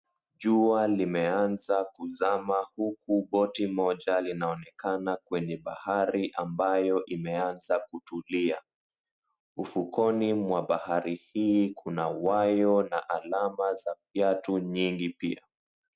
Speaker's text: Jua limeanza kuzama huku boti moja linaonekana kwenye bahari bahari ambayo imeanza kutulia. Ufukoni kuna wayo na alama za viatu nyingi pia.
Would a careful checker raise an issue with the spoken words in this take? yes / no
yes